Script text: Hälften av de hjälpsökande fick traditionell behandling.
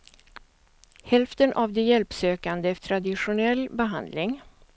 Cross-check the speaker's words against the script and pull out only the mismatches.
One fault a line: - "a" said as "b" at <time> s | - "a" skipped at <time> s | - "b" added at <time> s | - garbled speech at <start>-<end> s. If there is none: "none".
- "fick" skipped at 2.8 s